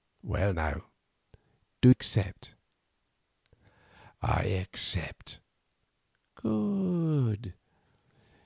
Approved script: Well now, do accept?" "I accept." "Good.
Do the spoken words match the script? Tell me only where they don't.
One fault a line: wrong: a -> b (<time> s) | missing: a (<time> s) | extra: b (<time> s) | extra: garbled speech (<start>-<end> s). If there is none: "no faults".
no faults